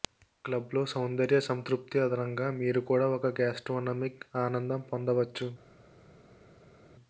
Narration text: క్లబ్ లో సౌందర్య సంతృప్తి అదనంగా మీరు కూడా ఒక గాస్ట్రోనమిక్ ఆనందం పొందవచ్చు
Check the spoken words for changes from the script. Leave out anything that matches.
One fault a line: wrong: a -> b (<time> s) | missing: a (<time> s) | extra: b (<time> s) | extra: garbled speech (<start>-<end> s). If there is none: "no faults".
no faults